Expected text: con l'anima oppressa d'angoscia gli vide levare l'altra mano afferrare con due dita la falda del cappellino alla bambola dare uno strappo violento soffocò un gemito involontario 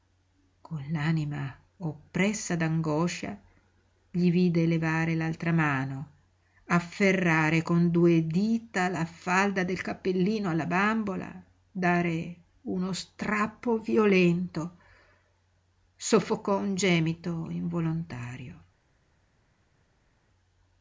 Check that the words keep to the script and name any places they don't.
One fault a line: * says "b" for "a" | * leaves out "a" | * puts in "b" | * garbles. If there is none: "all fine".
all fine